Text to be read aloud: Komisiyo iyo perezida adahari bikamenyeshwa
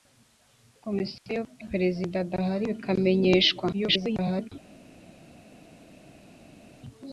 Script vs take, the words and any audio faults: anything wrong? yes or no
yes